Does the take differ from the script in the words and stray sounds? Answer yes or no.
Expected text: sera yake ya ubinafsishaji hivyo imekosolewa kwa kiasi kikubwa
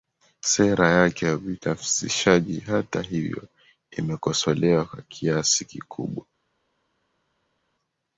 yes